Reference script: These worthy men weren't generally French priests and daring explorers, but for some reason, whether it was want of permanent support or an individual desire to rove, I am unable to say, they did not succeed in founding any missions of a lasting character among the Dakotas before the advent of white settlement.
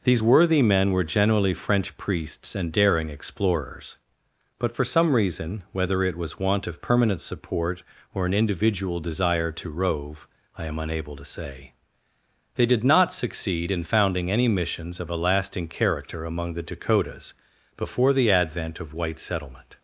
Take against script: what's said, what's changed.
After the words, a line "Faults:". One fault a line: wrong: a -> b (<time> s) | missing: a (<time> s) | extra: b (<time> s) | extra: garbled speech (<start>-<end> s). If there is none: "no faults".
These worthy men were generally French priests and daring explorers, but for some reason, whether it was want of permanent support or an individual desire to rove, I am unable to say, they did not succeed in founding any missions of a lasting character among the Dakotas before the advent of white settlement.
Faults:
wrong: weren't -> were (0.9 s)